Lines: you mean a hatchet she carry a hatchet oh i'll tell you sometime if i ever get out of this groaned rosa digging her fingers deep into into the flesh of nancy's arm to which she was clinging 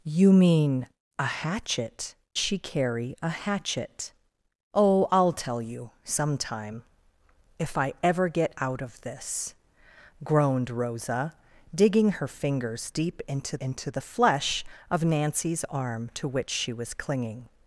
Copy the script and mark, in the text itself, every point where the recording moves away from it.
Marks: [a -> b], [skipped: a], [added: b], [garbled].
you mean a hatchet she carry a hatchet oh i'll tell you sometime if i ever get out of this groaned rosa digging her fingers deep into into the flesh of nancy's arm to which she was clinging